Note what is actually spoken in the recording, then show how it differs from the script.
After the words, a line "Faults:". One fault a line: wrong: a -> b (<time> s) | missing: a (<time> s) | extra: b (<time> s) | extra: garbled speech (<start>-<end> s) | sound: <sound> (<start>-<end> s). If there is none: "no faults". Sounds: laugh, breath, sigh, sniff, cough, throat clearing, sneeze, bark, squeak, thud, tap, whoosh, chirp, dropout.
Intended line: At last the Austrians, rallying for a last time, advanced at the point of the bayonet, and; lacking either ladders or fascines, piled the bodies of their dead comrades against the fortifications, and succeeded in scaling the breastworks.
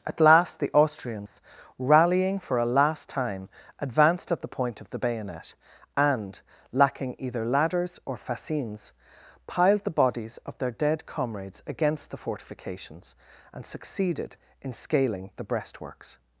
At last the Austrians, rallying for a last time, advanced at the point of the bayonet, and; lacking either ladders or fascines, piled the bodies of their dead comrades against the fortifications, and succeeded in scaling the breastworks.
Faults:
sound: dropout (1.3-1.4 s)